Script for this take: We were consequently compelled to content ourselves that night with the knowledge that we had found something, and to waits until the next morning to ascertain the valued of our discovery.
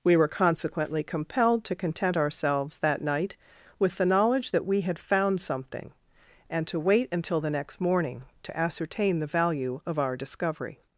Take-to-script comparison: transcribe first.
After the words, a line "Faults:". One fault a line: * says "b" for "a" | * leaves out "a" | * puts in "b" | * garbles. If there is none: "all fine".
We were consequently compelled to content ourselves that night with the knowledge that we had found something, and to wait until the next morning to ascertain the value of our discovery.
Faults:
* says "wait" for "waits"
* says "value" for "valued"